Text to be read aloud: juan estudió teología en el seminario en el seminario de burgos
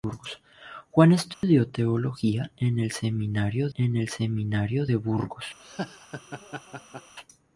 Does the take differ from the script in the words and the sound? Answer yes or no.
yes